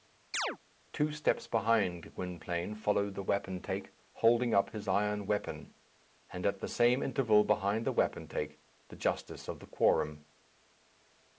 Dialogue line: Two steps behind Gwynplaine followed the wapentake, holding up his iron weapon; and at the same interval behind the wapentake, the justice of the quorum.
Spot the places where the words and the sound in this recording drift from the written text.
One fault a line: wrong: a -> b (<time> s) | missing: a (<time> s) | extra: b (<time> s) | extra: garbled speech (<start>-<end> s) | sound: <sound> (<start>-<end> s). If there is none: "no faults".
sound: chirp (0.3-0.6 s)